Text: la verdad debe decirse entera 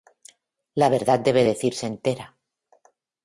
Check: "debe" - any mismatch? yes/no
no